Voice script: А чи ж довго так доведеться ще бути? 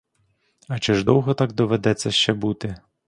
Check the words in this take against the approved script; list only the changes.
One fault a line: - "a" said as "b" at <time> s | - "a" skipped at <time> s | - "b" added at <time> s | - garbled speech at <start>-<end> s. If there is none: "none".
none